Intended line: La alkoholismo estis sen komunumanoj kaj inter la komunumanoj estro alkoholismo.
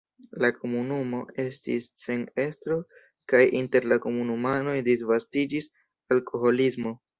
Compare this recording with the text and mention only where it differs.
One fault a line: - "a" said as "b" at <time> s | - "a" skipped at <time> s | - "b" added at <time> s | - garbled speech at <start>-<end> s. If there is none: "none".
- "alkoholismo" said as "komunumo" at 0.5 s
- "komunumanoj" said as "estro" at 2.5 s
- "estro" said as "disvastiĝis" at 4.9 s